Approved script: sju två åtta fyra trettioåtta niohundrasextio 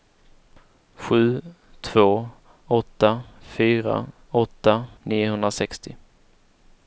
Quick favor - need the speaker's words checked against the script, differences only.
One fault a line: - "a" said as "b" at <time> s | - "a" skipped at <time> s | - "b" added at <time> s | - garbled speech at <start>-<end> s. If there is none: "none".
- "trettioåtta" said as "åtta" at 4.3 s